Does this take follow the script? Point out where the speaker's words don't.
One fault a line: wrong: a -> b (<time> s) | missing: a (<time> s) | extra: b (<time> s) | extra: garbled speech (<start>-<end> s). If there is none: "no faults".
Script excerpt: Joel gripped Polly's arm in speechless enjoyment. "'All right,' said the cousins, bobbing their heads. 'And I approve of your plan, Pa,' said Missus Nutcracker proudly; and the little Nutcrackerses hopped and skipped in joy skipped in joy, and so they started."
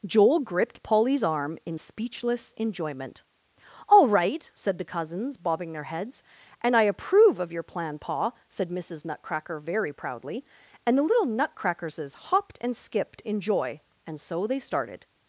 extra: very (9.6 s)
missing: skipped in joy (13.8 s)